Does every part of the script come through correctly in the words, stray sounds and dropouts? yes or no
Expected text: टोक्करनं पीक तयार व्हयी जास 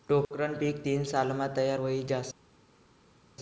no